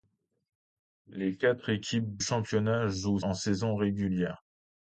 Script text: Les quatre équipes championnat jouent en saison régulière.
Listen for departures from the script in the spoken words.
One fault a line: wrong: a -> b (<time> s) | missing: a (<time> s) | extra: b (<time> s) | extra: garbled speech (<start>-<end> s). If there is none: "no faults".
no faults